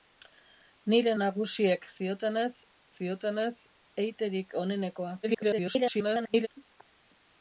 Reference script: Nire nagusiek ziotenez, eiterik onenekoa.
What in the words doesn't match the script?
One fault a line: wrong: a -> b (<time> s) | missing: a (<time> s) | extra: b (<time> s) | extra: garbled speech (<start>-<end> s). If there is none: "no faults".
extra: ziotenez (2.9 s)
extra: garbled speech (5.2-6.5 s)